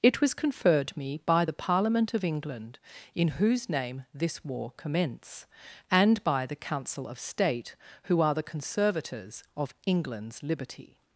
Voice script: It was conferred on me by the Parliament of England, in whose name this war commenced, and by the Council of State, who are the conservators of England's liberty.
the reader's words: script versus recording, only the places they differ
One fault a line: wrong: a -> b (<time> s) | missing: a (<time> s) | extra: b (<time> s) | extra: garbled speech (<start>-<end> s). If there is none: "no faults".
missing: on (1.0 s)
wrong: commenced -> commence (4.8 s)